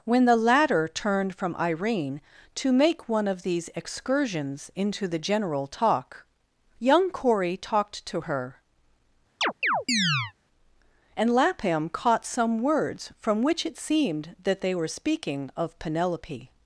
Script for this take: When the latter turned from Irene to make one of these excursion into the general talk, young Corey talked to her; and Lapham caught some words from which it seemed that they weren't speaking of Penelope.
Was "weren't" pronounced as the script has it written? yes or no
no